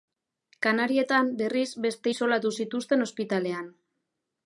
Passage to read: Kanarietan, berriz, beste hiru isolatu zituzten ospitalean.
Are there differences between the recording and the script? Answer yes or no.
yes